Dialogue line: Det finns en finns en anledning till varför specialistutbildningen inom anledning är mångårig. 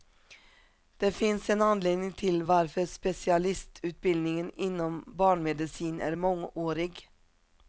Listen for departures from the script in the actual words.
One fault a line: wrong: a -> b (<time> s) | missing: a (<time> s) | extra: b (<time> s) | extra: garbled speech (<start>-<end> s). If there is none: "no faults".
missing: finns en (1.6 s)
wrong: anledning -> barnmedicin (5.1 s)